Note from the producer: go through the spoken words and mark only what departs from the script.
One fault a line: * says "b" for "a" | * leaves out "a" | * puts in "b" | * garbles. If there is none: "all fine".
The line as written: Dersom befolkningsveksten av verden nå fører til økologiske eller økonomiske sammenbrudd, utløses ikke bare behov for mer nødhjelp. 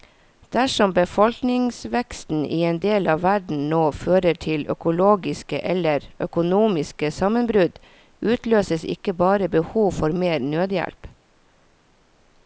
* puts in "i en del"